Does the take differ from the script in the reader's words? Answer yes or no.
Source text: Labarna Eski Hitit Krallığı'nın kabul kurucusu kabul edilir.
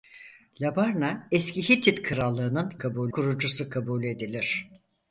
no